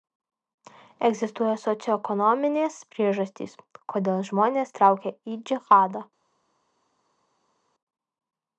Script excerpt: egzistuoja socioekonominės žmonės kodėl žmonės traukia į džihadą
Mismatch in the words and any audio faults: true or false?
true